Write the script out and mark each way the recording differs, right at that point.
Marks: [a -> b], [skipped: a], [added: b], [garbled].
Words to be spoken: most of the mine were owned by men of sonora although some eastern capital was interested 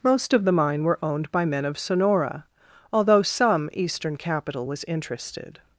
most of the mine were owned by men of sonora although some eastern capital was interested